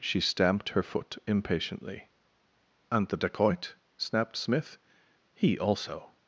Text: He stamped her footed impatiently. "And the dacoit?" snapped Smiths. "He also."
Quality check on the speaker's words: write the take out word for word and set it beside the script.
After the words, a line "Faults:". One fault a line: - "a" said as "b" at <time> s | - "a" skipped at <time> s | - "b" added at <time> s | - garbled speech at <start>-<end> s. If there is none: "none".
She stamped her foot impatiently. "And the dacoit?" snapped Smith. "He also."
Faults:
- "He" said as "She" at 0.0 s
- "footed" said as "foot" at 0.8 s
- "Smiths" said as "Smith" at 4.3 s